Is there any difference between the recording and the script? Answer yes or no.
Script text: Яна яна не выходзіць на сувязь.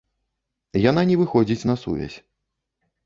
yes